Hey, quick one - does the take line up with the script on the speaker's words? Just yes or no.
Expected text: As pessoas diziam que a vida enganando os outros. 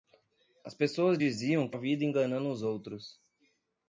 yes